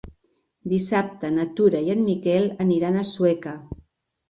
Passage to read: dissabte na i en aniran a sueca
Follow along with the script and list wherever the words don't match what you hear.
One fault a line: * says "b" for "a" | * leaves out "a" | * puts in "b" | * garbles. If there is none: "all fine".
* puts in "tura"
* puts in "miquel"